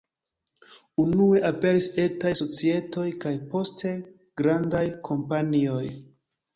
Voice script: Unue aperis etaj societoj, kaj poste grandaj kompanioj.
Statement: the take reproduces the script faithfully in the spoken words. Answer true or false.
true